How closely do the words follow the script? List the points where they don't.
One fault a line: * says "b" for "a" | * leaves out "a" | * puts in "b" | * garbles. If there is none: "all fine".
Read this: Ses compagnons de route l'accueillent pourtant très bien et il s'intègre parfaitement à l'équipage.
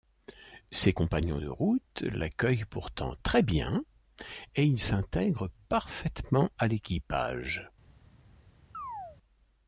all fine